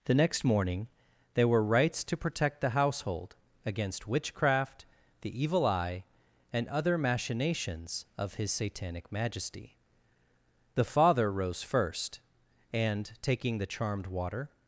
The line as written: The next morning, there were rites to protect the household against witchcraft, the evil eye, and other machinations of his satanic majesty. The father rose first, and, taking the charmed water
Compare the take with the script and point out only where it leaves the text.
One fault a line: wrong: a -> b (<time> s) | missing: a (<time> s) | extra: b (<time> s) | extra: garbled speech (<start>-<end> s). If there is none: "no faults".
no faults